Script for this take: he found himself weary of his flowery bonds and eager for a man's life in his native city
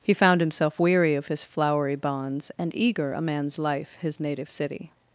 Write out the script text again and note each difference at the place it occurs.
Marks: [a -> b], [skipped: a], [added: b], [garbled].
he found himself weary of his flowery bonds and eager [skipped: for] a man's life [skipped: in] his native city